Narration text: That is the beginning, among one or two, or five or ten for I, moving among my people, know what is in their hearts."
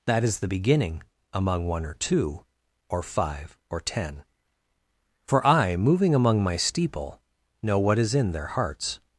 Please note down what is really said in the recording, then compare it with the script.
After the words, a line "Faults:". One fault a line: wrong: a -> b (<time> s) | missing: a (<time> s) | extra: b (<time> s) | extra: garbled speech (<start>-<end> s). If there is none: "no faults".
That is the beginning, among one or two, or five or ten for I, moving among my steeple, know what is in their hearts."
Faults:
wrong: people -> steeple (6.6 s)